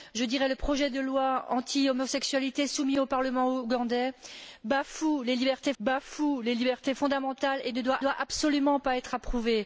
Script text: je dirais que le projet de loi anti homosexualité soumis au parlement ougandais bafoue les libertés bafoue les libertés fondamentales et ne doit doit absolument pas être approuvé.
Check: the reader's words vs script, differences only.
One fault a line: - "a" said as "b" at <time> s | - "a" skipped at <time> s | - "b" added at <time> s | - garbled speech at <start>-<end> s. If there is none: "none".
none